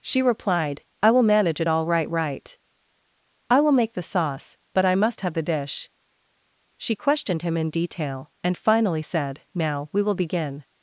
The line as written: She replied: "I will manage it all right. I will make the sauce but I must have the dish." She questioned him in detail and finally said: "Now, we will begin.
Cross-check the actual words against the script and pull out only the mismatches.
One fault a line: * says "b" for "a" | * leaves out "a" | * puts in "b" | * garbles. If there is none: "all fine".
* puts in "right"